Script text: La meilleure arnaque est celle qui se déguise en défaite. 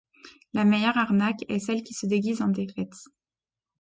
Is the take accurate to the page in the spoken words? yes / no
yes